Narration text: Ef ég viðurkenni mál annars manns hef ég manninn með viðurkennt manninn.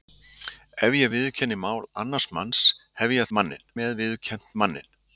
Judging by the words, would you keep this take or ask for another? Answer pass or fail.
pass